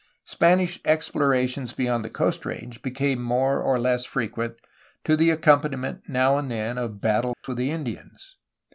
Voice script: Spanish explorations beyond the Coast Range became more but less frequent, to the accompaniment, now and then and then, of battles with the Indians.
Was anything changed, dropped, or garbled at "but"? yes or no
yes